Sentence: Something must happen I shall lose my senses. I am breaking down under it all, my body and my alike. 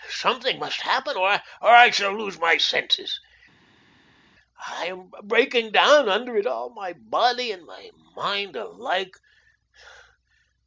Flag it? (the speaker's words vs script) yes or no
yes